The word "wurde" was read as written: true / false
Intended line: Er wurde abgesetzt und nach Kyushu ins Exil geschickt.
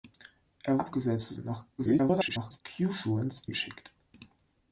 false